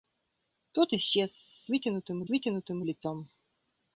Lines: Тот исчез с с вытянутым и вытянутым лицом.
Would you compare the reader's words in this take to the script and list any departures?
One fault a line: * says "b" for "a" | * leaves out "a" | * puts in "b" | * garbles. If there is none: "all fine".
all fine